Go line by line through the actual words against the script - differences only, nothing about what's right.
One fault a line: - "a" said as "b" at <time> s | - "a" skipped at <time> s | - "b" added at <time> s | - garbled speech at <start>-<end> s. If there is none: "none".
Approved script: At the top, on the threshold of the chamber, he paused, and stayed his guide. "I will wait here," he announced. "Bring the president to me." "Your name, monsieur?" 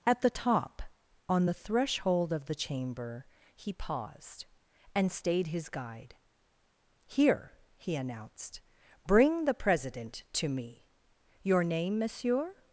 - "I will wait" skipped at 6.1 s